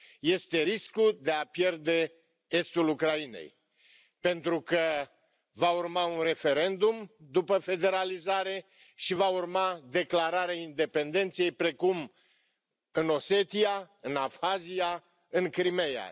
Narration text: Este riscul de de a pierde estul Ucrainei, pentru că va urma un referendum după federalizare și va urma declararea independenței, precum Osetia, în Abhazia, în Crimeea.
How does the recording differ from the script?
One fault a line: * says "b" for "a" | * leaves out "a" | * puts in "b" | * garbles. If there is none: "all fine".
* leaves out "de"
* puts in "în"